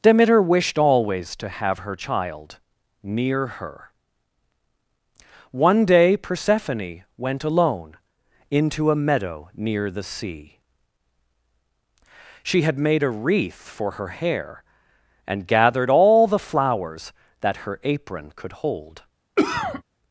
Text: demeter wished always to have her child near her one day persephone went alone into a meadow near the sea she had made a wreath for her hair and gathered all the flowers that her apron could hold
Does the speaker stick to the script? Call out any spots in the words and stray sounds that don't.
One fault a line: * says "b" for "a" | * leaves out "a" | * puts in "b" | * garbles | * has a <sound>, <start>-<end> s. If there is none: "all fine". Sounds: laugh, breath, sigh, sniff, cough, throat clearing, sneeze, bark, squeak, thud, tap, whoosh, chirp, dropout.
* has a cough, 19.4-19.8 s